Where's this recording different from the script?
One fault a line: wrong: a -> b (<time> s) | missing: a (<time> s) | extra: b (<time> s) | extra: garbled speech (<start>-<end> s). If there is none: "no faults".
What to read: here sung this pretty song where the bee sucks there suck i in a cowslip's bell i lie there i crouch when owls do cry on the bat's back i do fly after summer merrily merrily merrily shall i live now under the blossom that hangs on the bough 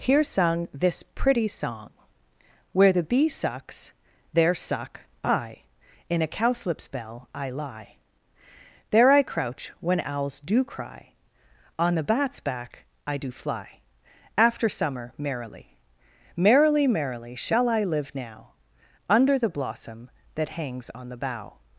no faults